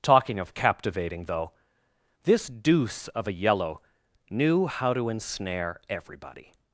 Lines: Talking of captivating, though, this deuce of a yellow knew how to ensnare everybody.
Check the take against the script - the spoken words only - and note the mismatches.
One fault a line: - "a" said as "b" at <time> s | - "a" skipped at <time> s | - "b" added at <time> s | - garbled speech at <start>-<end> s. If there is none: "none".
none